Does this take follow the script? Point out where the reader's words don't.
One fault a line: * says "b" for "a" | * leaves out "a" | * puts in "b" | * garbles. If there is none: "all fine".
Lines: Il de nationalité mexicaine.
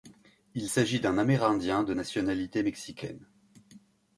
* puts in "s'agit d'un amérindien"